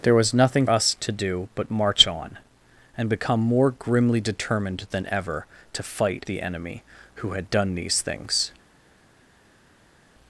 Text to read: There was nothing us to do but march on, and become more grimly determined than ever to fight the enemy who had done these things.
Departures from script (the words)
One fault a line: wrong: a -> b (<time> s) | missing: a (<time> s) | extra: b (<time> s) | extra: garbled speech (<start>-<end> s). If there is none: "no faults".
no faults